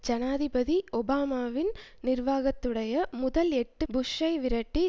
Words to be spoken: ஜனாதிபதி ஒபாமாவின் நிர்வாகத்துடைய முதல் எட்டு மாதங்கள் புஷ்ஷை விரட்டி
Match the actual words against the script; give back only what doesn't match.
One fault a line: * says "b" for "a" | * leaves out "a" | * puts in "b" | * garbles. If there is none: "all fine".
* leaves out "மாதங்கள்"